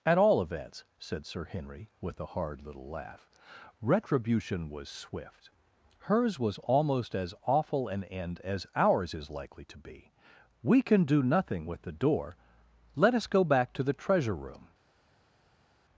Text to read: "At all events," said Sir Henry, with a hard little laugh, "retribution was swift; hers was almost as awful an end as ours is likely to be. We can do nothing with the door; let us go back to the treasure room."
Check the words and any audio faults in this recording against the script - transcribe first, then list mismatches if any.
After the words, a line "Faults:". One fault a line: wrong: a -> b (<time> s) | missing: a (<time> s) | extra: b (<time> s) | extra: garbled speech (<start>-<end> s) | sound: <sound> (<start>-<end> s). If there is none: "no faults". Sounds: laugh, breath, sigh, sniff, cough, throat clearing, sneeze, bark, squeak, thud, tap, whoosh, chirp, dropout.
"At all events," said Sir Henry, with a hard little laugh, "retribution was swift; hers was almost as awful an end as ours is likely to be. We can do nothing with the door; let us go back to the treasure room."
Faults:
no faults